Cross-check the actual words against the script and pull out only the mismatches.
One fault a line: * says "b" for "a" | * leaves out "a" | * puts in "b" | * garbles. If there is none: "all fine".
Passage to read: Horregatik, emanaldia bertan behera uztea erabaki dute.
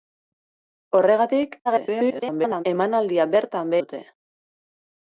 * garbles
* leaves out "behera uztea erabaki"